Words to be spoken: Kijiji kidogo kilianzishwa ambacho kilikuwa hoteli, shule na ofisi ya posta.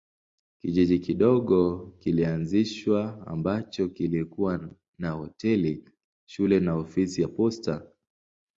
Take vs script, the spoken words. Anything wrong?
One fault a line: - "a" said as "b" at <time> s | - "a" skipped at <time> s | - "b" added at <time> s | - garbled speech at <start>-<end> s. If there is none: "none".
- "na" added at 5.0 s